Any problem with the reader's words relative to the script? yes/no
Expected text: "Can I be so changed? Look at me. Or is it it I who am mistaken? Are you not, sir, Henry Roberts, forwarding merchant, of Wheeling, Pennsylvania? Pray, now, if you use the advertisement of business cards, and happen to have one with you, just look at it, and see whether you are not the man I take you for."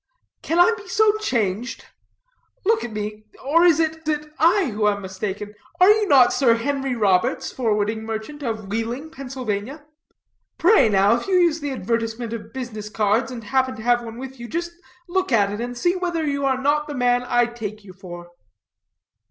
no